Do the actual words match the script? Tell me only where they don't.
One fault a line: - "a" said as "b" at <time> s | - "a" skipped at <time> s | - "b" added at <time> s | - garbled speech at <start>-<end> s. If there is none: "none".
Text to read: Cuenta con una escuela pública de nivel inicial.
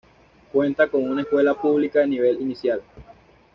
none